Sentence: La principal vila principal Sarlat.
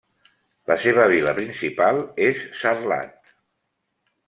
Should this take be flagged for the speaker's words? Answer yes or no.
yes